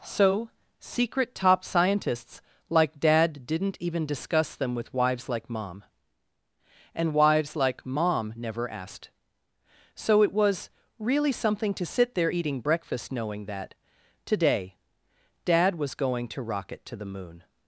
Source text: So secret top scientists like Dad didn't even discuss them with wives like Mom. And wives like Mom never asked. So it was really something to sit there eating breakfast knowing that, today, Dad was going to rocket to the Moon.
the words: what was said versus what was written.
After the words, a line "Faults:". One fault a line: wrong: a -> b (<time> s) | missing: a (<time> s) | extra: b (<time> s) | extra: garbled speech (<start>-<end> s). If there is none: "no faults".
So secret top scientists like Dad didn't even discuss them with wives like Mom. And wives like Mom never asked. So it was really something to sit there eating breakfast knowing that, today, Dad was going to rocket to the Moon.
Faults:
no faults